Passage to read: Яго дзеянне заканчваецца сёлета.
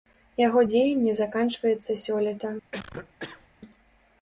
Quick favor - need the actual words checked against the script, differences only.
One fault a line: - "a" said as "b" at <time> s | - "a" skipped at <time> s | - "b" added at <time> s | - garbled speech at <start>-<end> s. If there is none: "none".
none